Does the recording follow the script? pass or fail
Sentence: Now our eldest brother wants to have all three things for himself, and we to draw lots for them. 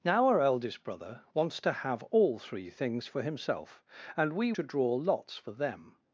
pass